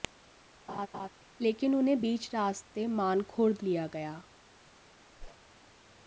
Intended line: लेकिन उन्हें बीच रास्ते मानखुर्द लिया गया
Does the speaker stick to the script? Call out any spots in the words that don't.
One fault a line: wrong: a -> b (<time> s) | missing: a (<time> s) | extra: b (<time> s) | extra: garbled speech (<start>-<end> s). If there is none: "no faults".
no faults